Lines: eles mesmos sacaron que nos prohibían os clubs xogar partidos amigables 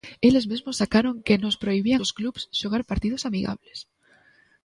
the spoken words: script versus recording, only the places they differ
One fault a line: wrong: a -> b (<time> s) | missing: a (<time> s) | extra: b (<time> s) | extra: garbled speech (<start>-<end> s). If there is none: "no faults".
no faults